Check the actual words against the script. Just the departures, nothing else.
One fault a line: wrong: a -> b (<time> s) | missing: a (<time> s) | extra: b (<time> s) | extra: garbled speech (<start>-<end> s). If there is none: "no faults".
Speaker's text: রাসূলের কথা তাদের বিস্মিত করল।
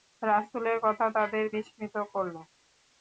no faults